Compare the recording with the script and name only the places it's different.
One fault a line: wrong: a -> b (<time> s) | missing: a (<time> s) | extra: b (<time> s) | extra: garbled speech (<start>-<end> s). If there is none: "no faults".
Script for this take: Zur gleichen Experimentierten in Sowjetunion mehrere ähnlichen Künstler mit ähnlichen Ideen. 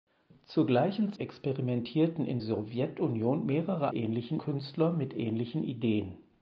no faults